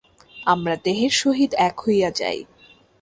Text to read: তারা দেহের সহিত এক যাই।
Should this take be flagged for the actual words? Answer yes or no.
yes